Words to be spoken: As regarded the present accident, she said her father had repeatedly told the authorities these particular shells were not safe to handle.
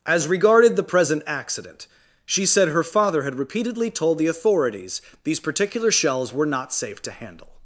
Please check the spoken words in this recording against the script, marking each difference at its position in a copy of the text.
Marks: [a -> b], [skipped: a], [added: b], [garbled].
As regarded the present accident, she said her father had repeatedly told the authorities these particular shells were not safe to handle.